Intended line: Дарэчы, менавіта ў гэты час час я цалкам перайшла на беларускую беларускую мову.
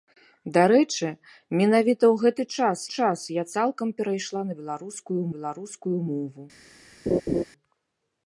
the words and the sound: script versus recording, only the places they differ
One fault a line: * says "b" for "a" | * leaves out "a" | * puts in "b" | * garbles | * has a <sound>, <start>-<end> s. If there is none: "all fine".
* has a laugh, 7.1-7.4 s